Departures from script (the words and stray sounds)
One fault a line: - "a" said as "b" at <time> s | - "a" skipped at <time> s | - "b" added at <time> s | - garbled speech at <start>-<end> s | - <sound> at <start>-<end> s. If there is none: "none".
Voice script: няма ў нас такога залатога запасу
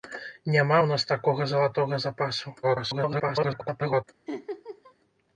- garbled speech at 2.6-4.0 s
- laugh at 4.3-4.9 s